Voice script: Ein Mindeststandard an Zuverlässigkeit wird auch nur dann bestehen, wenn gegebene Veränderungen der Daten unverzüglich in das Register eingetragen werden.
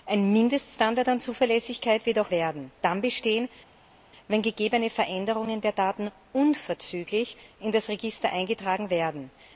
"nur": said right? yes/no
no